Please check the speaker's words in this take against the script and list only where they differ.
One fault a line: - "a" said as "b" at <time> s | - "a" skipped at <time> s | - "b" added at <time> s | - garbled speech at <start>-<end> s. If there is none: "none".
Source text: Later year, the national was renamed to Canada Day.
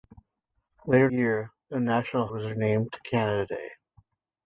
none